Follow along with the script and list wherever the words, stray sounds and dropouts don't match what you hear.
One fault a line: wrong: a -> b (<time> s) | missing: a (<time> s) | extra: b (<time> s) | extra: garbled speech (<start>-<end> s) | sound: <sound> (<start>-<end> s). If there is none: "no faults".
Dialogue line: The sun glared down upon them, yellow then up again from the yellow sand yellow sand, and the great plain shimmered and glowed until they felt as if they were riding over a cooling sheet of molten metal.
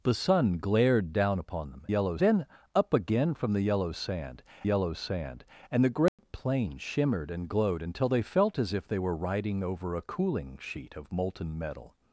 sound: dropout (6.1-6.2 s)